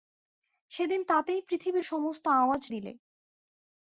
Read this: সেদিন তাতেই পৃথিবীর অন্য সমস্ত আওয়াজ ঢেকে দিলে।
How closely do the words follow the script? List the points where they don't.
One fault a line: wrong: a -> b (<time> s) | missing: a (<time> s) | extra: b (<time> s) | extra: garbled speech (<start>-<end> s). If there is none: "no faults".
missing: অন্য (1.9 s)
missing: ঢেকে (2.6 s)